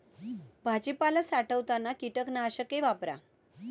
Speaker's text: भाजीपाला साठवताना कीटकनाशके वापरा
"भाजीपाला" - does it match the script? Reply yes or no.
yes